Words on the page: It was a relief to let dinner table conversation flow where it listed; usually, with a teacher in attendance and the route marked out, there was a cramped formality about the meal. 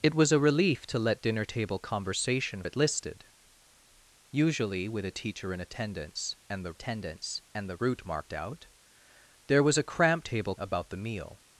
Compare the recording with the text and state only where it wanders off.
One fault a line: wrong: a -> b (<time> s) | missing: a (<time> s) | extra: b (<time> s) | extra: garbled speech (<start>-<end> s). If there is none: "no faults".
missing: flow where (2.6 s)
extra: attendance and the (6.7 s)
wrong: formality -> table (10.2 s)